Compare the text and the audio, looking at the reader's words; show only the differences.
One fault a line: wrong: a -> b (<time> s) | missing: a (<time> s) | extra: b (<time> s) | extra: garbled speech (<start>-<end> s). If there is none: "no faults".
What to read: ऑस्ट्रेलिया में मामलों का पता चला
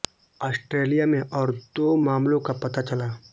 extra: और दो (1.2 s)